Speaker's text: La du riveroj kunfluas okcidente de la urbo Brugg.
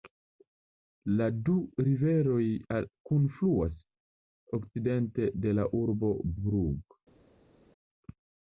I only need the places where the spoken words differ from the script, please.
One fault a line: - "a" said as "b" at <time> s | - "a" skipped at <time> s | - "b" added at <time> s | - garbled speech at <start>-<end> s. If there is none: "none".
none